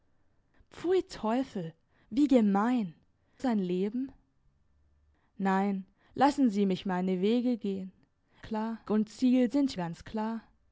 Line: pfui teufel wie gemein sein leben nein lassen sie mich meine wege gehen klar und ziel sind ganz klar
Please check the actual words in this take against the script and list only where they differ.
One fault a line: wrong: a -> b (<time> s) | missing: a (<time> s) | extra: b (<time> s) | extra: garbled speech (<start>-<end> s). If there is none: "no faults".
no faults